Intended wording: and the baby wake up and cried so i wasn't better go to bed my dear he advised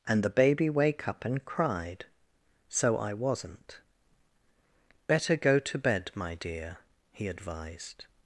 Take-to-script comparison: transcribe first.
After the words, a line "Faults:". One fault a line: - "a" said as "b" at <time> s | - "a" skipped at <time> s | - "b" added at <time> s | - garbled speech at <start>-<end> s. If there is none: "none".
and the baby wake up and cried so i wasn't better go to bed my dear he advised
Faults:
none